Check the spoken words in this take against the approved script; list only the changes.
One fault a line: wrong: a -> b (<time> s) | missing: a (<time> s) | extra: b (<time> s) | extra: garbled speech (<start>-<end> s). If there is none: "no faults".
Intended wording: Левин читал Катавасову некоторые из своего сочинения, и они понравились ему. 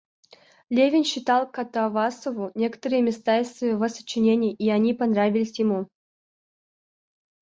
extra: места (3.0 s)